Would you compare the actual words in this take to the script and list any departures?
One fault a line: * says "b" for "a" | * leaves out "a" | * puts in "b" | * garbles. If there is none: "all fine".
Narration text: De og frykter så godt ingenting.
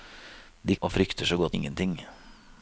all fine